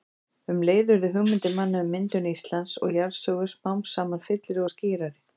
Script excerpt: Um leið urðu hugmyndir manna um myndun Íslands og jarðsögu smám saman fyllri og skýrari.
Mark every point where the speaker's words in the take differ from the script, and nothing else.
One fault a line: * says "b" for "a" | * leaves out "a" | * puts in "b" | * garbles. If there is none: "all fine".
all fine